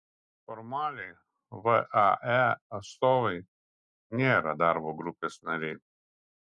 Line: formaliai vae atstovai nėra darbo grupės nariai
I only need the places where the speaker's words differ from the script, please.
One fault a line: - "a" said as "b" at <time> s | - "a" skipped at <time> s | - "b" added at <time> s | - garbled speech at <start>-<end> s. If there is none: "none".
none